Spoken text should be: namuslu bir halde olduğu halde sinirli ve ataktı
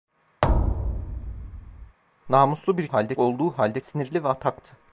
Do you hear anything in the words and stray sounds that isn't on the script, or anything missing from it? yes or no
yes